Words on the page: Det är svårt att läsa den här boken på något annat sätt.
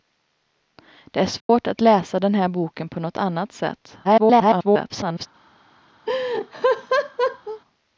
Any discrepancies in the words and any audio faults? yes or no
yes